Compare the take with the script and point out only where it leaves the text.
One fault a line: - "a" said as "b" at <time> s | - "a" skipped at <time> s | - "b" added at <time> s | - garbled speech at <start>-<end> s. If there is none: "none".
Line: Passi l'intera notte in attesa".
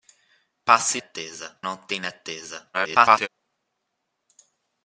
- "l'intera" said as "attesa" at 1.0 s
- garbled speech at 2.7-3.3 s